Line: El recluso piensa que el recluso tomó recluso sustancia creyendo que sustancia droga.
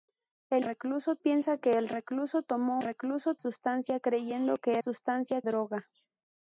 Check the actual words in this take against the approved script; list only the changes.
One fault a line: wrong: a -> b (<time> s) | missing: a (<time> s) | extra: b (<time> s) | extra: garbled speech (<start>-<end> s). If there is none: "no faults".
no faults